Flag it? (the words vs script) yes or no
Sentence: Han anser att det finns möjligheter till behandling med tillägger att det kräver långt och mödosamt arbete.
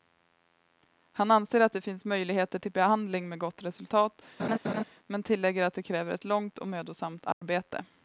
yes